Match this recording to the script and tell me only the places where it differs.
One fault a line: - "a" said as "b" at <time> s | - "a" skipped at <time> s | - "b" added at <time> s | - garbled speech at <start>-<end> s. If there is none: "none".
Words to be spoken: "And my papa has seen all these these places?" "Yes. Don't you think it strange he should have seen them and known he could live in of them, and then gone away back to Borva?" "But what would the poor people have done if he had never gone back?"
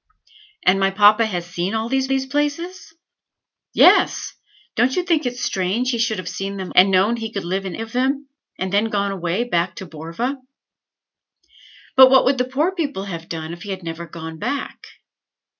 none